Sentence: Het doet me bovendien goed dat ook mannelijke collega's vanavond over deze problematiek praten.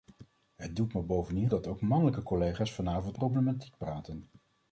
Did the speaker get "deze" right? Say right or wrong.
wrong